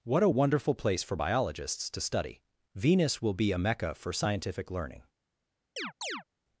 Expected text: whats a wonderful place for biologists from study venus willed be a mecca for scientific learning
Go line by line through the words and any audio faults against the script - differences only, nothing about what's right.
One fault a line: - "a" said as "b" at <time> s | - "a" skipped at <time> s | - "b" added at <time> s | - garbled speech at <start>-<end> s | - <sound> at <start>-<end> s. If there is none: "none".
- "whats" said as "what" at 0.0 s
- "from" said as "to" at 1.9 s
- "willed" said as "will" at 3.2 s
- chirp at 5.8-6.2 s